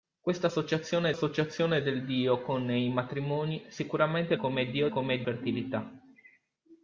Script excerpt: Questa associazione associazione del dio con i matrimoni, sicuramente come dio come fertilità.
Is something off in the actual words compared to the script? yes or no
no